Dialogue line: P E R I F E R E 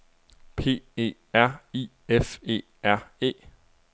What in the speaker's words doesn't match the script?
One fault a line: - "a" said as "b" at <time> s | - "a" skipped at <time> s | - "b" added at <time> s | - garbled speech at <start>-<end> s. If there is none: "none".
none